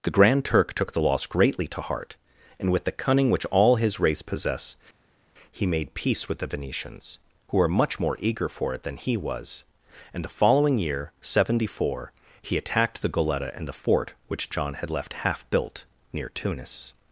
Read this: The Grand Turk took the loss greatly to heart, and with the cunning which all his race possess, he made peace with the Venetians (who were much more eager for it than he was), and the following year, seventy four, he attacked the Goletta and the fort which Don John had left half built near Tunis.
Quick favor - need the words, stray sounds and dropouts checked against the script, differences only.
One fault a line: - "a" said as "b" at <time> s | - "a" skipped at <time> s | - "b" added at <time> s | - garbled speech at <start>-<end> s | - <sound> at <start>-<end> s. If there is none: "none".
- "Don" skipped at 14.5 s